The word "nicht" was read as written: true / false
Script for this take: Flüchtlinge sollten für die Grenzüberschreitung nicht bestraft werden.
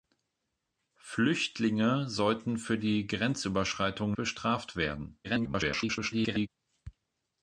false